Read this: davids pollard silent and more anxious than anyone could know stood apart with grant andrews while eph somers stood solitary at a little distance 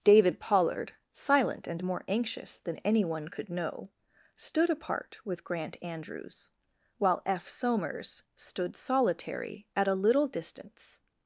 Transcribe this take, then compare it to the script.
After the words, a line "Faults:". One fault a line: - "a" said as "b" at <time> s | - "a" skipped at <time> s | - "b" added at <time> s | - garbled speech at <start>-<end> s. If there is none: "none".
david pollard silent and more anxious than anyone could know stood apart with grant andrews while eph somers stood solitary at a little distance
Faults:
- "davids" said as "david" at 0.0 s